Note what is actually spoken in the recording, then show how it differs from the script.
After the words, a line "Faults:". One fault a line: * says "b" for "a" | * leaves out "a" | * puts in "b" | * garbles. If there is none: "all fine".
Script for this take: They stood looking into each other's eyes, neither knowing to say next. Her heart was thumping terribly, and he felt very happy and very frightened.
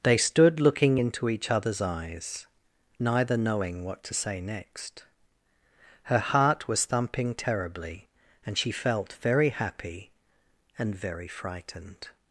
They stood looking into each other's eyes, neither knowing what to say next. Her heart was thumping terribly, and she felt very happy and very frightened.
Faults:
* puts in "what"
* says "she" for "he"